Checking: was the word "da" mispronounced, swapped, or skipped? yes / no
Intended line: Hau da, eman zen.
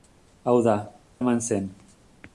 no